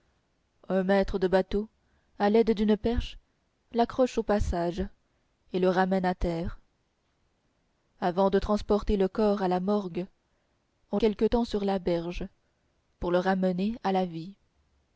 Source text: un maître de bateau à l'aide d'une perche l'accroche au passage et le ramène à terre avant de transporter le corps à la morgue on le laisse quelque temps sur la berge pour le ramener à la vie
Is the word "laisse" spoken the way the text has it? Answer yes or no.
no